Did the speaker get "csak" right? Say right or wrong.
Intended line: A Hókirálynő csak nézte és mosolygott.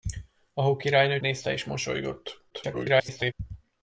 wrong